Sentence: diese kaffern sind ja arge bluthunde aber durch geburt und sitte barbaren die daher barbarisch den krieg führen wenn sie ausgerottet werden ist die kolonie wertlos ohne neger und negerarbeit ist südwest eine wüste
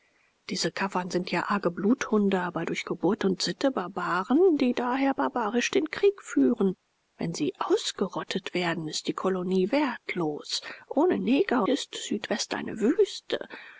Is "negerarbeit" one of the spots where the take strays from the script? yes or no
yes